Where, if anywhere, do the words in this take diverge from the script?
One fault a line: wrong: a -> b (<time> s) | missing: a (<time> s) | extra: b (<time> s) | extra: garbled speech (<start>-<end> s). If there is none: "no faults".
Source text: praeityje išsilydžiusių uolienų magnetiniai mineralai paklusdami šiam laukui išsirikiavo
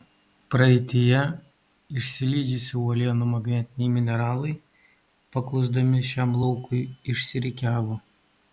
no faults